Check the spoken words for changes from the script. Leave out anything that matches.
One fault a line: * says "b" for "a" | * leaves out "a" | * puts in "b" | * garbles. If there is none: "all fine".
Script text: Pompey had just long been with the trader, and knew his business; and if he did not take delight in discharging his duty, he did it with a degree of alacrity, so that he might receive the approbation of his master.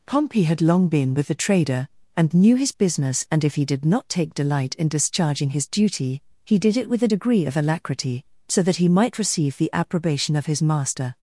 * leaves out "just"